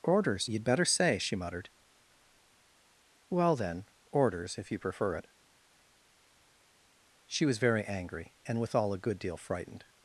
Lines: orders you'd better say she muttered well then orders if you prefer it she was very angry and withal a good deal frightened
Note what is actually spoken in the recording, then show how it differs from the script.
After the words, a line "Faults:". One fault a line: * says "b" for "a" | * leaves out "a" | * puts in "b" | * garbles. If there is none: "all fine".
orders you'd better say she muttered well then orders if you prefer it she was very angry and withal a good deal frightened
Faults:
all fine